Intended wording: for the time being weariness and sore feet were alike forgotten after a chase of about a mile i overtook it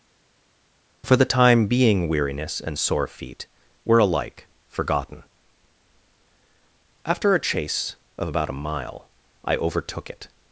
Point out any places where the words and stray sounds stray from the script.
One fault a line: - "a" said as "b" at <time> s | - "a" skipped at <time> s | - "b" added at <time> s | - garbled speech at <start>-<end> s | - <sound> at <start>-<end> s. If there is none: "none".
none